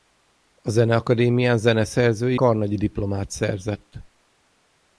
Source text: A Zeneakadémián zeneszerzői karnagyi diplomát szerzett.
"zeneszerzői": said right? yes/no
yes